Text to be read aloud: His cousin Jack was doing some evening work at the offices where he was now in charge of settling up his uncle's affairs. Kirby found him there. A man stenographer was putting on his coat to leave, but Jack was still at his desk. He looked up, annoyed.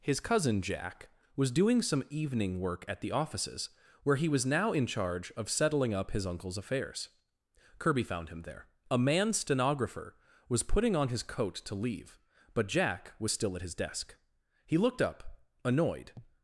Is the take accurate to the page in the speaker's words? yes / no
yes